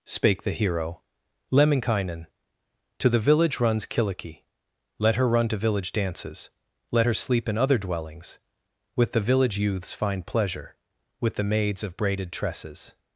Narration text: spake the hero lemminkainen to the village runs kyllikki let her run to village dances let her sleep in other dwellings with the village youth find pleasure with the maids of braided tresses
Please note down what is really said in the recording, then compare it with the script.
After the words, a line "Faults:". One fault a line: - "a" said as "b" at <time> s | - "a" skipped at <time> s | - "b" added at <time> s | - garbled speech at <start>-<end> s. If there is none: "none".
spake the hero lemminkainen to the village runs kyllikki let her run to village dances let her sleep in other dwellings with the village youths find pleasure with the maids of braided tresses
Faults:
- "youth" said as "youths" at 9.6 s